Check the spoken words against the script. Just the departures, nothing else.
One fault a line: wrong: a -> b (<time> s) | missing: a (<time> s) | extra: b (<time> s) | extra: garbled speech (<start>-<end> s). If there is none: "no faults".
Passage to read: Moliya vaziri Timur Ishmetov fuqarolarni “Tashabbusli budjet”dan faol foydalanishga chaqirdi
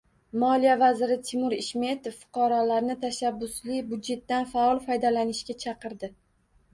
no faults